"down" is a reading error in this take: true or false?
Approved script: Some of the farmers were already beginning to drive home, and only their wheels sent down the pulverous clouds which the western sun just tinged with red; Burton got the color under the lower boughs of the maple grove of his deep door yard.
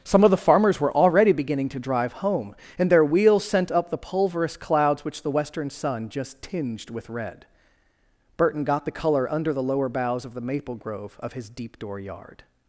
true